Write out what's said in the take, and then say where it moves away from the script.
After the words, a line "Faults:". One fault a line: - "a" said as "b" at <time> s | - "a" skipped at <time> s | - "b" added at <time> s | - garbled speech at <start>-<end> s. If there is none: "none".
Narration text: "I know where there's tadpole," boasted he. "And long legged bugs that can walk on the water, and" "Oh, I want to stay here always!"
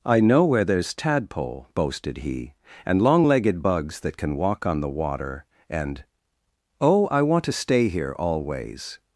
"I know where there's tadpole," boasted he. "And long legged bugs that can walk on the water, and" "Oh, I want to stay here always!"
Faults:
none